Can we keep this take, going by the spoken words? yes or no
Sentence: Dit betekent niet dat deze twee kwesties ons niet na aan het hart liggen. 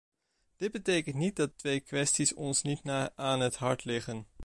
no